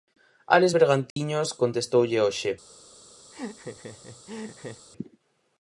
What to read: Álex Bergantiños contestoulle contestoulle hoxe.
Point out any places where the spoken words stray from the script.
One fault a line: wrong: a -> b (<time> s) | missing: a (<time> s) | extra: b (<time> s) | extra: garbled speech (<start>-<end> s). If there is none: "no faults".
missing: contestoulle (2.2 s)